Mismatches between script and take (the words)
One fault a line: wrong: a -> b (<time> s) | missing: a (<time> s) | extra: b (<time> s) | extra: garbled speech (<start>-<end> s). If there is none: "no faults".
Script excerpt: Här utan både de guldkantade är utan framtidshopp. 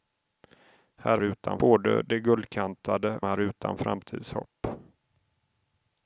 no faults